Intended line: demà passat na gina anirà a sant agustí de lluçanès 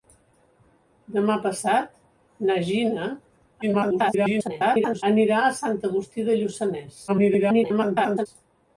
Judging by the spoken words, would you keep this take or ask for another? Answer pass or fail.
fail